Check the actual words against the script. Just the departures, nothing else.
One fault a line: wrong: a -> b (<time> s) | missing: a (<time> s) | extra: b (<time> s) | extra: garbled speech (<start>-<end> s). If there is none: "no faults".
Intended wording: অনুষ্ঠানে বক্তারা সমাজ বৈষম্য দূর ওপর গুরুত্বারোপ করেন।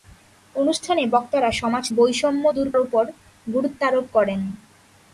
no faults